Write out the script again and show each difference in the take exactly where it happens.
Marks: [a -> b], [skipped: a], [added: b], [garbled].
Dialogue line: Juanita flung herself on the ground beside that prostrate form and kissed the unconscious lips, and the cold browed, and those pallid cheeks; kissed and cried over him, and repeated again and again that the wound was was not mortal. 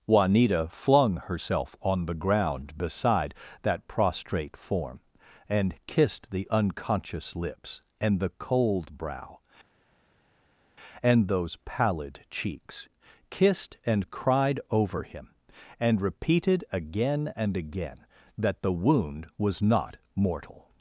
Juanita flung herself on the ground beside that prostrate form and kissed the unconscious lips, and the cold [browed, -> brow] and those pallid cheeks; kissed and cried over him, and repeated again and again that the wound was [skipped: was] not mortal.